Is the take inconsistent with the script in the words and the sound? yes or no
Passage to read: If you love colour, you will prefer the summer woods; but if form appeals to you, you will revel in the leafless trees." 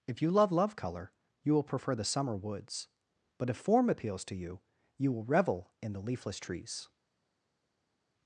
yes